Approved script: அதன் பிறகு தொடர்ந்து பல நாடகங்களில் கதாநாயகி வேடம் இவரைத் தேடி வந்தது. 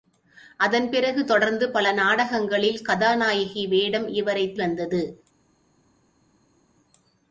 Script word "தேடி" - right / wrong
wrong